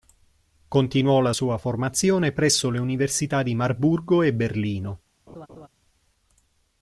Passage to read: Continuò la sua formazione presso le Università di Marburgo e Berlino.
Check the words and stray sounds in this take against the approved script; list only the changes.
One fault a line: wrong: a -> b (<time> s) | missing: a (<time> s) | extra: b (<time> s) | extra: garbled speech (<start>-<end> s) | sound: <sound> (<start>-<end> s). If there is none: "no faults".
sound: laugh (5.3-5.7 s)